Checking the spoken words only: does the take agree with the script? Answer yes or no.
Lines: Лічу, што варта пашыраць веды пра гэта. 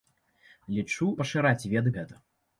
no